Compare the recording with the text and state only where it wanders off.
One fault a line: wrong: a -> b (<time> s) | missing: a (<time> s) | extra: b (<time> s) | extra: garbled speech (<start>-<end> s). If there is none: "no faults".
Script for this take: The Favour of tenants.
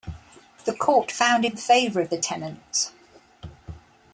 extra: Court found in (0.7 s)
extra: the (2.1 s)